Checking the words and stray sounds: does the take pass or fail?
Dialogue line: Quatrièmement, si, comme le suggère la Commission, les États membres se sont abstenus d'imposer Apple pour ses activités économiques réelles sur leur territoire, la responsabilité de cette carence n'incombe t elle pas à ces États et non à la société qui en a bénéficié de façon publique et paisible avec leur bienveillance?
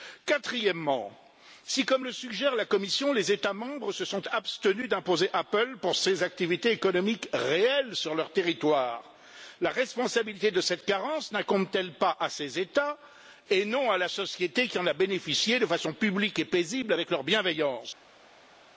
pass